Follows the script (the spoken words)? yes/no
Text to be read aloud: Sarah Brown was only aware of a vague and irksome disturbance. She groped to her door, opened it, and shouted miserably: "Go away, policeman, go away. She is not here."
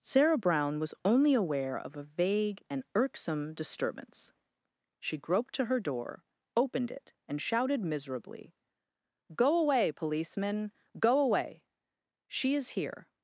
no